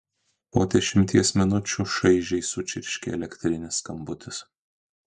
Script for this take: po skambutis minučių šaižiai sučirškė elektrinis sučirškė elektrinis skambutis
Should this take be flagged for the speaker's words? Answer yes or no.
yes